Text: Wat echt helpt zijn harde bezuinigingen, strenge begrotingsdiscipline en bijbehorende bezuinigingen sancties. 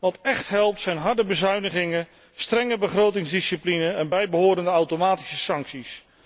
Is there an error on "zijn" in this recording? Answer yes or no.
no